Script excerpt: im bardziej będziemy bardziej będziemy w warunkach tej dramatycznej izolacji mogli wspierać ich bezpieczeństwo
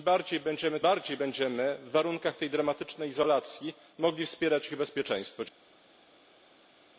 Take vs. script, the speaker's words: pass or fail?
pass